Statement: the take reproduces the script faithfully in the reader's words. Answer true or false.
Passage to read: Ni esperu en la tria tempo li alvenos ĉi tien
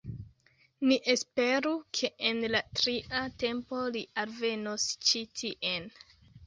false